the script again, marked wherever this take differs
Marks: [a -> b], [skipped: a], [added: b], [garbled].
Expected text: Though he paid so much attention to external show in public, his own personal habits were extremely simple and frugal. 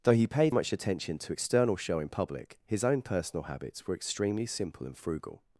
Though he paid [skipped: so] much attention to external show in public, his own personal habits were extremely simple and frugal.